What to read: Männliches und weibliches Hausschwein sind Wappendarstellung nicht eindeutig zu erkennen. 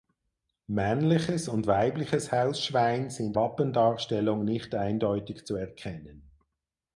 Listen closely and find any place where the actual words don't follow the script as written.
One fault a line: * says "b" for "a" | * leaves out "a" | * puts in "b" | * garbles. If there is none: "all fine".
all fine